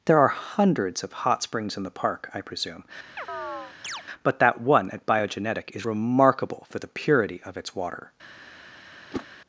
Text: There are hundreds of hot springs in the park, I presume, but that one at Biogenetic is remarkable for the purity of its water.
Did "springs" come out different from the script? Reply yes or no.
no